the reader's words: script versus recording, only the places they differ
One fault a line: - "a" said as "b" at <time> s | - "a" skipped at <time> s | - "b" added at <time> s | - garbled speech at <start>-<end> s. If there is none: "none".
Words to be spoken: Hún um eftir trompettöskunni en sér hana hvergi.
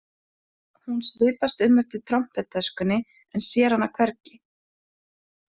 - "svipast" added at 1.1 s